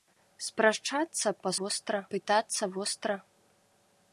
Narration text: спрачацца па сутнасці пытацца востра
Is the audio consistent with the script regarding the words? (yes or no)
no